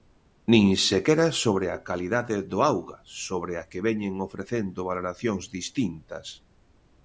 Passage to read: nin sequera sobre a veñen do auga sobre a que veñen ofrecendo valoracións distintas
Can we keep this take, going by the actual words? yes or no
no